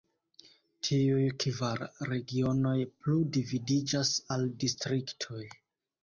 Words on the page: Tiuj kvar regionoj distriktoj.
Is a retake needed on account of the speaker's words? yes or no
yes